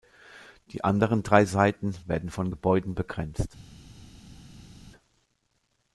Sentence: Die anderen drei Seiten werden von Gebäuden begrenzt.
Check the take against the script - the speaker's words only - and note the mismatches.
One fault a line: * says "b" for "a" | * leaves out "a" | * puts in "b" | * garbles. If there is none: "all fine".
all fine